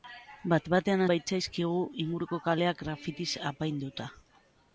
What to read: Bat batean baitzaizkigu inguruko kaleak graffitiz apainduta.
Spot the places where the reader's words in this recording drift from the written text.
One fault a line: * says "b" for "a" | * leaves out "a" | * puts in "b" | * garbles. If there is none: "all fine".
all fine